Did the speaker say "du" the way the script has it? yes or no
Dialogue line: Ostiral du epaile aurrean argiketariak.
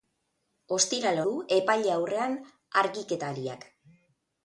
yes